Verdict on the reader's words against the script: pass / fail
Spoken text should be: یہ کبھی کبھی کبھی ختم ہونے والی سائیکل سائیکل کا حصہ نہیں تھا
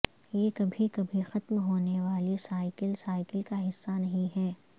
fail